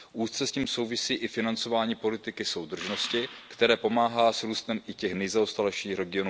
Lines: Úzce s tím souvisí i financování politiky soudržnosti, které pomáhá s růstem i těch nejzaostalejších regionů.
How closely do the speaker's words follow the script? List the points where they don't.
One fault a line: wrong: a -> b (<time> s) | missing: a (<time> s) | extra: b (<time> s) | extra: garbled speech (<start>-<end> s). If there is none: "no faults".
no faults